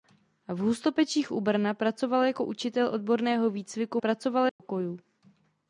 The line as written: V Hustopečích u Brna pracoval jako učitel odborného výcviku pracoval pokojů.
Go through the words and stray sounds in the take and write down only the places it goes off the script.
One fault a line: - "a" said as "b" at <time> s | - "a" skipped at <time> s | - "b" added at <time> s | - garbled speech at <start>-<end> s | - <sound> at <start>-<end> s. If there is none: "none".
- dropout at 4.5-4.6 s